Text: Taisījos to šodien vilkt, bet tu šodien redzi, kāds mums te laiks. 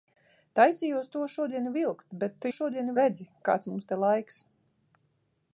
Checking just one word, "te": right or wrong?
right